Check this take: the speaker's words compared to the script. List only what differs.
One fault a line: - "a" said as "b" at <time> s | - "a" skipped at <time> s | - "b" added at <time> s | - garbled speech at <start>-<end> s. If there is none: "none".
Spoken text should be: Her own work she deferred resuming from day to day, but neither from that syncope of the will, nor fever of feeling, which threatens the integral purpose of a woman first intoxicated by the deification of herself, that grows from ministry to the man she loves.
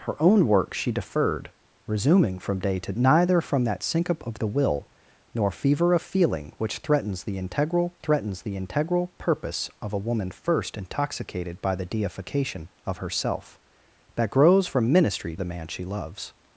- "day but" skipped at 2.9 s
- "threatens the integral" added at 8.0 s
- "to" skipped at 15.4 s